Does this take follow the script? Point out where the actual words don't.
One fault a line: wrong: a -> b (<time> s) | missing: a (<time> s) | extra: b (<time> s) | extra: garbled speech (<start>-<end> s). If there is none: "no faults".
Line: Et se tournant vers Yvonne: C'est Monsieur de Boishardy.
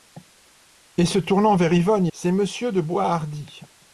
no faults